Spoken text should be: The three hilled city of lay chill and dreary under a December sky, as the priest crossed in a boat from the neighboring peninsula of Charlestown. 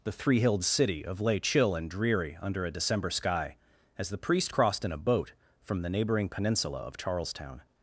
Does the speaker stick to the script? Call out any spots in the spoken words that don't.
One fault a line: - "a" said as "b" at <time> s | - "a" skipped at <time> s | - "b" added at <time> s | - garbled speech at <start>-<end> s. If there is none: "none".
none